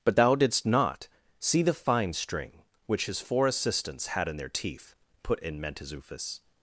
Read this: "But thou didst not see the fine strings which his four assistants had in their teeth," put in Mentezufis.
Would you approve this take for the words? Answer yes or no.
no